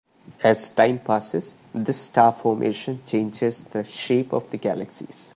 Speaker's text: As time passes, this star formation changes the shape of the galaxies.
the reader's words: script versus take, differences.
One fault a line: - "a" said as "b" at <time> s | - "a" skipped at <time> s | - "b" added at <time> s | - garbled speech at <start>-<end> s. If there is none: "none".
none